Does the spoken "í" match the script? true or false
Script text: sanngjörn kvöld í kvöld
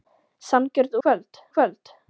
true